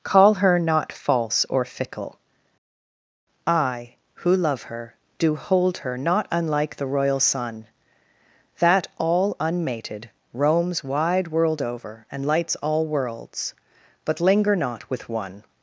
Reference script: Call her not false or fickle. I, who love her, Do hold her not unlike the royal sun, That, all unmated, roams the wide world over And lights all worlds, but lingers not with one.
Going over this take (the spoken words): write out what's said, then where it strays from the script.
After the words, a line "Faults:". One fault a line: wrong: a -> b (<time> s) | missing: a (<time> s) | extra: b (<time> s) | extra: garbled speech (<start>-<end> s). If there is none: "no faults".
Call her not false or fickle. I, who love her, Do hold her not unlike the royal sun, That, all unmated, roams wide world over And lights all worlds, but linger not with one.
Faults:
missing: the (10.8 s)
wrong: lingers -> linger (14.2 s)